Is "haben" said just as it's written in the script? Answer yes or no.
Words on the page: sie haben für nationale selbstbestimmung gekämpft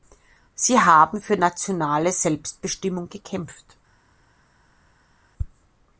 yes